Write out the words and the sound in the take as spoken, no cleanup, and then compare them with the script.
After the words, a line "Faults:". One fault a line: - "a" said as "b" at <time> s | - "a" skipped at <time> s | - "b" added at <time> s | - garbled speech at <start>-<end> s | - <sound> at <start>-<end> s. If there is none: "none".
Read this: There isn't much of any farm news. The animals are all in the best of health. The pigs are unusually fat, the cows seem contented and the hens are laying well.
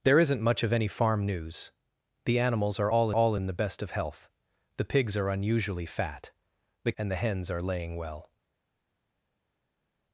There isn't much of any farm news. The animals are all all in the best of health. The pigs are unusually fat, the and the hens are laying well.
Faults:
- "all" added at 3.1 s
- "cows seem contented" skipped at 6.9 s